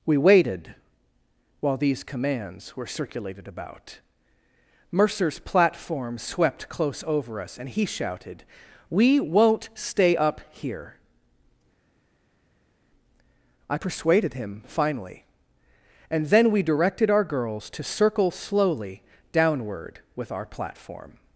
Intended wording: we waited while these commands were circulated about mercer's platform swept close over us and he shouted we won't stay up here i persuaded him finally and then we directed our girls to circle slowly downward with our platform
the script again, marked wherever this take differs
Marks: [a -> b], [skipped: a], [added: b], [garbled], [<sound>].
we waited while these commands were circulated about mercer's platform swept close over us and he shouted we won't stay up here i persuaded him finally and then we directed our girls to circle slowly downward with our platform